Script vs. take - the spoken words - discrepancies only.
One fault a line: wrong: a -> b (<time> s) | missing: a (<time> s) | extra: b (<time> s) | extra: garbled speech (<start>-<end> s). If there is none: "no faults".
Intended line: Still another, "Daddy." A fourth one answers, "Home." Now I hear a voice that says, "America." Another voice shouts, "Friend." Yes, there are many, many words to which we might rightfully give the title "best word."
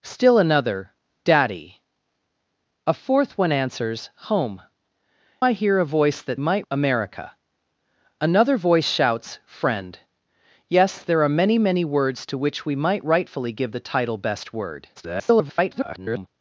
missing: Now (4.6 s)
wrong: says -> might (6.4 s)
extra: garbled speech (15.0-16.3 s)